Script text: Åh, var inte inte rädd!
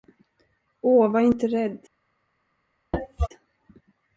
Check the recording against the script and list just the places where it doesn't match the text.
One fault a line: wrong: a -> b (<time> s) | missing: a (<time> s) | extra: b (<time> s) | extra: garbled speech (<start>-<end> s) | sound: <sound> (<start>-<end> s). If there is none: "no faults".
missing: inte (1.5 s)
sound: cough (2.9-3.3 s)